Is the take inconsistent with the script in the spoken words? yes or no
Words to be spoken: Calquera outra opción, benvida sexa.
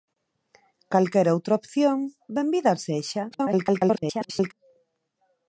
yes